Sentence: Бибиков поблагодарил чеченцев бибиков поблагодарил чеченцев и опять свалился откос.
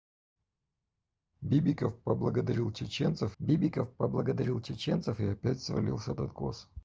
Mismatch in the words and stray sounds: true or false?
false